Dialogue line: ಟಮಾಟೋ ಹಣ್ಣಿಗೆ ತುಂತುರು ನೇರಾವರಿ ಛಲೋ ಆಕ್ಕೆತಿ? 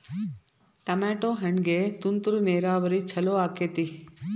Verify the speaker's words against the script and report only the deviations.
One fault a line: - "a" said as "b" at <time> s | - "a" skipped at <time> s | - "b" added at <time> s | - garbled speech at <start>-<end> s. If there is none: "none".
none